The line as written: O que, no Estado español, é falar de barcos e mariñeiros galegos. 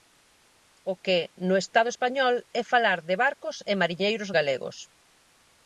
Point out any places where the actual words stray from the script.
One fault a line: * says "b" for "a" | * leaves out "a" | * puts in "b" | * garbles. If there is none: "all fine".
all fine